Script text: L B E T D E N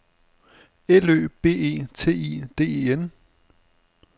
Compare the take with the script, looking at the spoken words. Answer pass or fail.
fail